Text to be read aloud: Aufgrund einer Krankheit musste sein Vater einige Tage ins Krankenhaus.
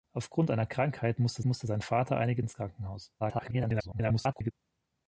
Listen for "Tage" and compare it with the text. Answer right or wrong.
wrong